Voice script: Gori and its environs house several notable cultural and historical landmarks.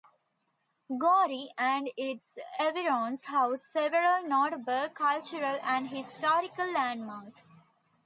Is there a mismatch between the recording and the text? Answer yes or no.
no